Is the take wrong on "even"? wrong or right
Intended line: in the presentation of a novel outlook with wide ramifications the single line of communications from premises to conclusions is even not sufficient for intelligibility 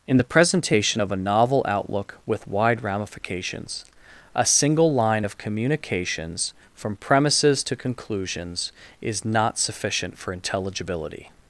wrong